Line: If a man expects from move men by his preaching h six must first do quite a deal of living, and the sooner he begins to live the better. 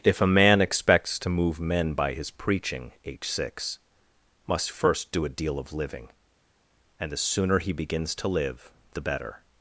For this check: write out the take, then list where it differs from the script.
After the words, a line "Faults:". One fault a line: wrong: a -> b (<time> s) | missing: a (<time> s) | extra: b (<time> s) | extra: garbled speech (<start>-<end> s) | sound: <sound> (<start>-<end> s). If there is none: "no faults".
If a man expects to move men by his preaching h six must first do a deal of living, and the sooner he begins to live the better.
Faults:
wrong: from -> to (1.2 s)
missing: quite (5.2 s)